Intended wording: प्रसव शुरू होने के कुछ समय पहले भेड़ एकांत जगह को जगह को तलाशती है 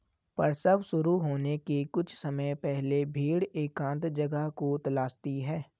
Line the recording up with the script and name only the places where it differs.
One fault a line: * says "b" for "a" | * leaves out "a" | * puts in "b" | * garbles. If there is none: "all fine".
* leaves out "जगह को"